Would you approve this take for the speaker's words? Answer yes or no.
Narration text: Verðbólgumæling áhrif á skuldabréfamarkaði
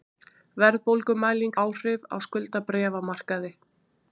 yes